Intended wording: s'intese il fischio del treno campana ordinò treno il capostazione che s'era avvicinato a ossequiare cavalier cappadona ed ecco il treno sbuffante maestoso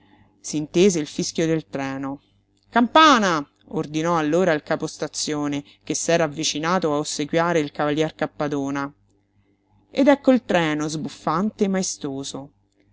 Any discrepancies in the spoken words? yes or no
yes